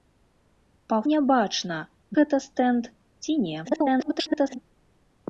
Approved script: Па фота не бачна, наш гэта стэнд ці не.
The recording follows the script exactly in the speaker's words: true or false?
false